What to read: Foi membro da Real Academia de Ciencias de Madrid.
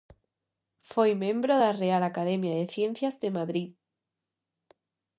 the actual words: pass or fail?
pass